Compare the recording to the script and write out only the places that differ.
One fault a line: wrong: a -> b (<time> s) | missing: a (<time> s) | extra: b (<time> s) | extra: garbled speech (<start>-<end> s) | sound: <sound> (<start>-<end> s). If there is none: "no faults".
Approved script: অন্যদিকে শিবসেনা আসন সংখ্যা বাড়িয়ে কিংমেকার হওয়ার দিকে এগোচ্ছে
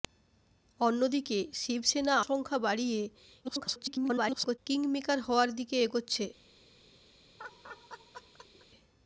missing: আসন (2.1 s)
extra: garbled speech (3.4-4.6 s)
sound: laugh (7.4-8.7 s)